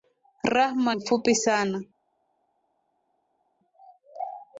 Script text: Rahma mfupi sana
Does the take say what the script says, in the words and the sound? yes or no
yes